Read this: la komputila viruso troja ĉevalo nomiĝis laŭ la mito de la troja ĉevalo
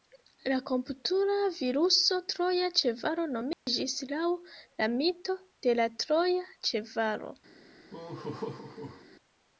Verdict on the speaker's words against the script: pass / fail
pass